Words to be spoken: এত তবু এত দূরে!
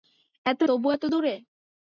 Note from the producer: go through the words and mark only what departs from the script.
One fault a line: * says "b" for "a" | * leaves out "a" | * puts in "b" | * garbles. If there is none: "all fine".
all fine